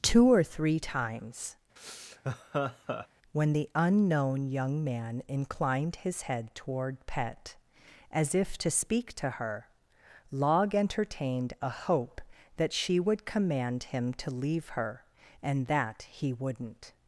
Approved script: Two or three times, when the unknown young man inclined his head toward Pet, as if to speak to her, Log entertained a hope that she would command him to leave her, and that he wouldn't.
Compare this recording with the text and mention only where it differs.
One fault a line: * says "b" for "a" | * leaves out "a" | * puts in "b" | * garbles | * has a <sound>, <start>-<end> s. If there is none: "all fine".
* has a laugh, 1.8-3.1 s